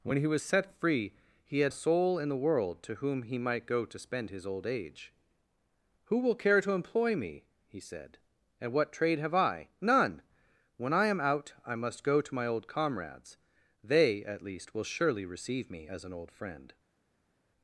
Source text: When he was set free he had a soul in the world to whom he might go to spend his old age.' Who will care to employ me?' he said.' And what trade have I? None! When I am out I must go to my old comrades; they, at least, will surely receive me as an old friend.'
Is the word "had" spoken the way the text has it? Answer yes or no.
yes